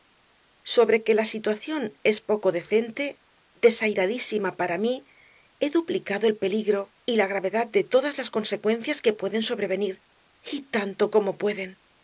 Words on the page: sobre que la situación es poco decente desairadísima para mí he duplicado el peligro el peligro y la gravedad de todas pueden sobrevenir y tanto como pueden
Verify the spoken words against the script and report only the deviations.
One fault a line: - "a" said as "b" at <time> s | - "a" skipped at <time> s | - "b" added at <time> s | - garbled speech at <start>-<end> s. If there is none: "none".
- "el peligro" skipped at 6.9 s
- "las consecuencias que" added at 8.2 s